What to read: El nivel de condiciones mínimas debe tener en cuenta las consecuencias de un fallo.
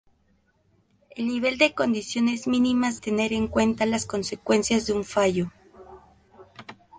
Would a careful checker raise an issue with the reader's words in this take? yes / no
yes